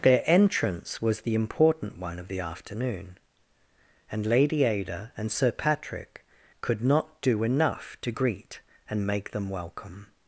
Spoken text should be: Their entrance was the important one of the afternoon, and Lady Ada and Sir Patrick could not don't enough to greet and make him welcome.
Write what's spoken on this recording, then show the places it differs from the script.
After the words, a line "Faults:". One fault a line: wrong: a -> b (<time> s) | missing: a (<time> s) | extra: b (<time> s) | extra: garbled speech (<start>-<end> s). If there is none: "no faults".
Their entrance was the important one of the afternoon, and Lady Ada and Sir Patrick could not do enough to greet and make them welcome.
Faults:
wrong: don't -> do (7.2 s)
wrong: him -> them (9.3 s)